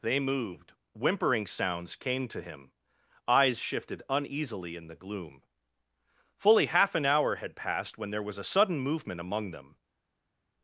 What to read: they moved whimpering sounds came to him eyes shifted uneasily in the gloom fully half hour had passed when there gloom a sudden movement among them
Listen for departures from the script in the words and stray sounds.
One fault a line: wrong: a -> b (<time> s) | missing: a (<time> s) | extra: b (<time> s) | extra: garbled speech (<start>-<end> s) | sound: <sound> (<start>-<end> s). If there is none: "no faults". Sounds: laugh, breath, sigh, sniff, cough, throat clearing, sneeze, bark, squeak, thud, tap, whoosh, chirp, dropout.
extra: an (6.9 s)
wrong: gloom -> was (8.2 s)